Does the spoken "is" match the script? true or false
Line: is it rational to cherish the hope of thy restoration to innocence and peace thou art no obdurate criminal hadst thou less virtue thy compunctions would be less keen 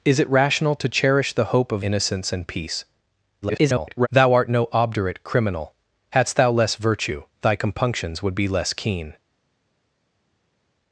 true